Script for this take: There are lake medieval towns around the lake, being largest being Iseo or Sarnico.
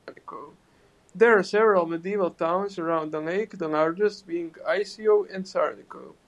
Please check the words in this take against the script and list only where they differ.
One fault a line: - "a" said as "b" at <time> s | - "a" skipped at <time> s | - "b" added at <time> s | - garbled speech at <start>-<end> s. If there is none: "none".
- "lake" said as "several" at 1.4 s
- "being" said as "the" at 3.6 s
- "or" said as "and" at 5.3 s